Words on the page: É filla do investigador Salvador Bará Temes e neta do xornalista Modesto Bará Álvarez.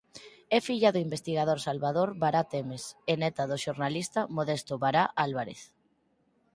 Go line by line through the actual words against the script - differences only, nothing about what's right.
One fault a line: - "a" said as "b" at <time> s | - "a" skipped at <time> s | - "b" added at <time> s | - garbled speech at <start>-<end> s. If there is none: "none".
none